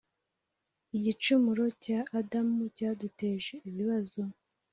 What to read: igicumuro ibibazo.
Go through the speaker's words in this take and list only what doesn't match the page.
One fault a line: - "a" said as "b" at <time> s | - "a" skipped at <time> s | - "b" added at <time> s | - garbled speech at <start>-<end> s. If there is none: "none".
- "cya adamu cyaduteje" added at 1.8 s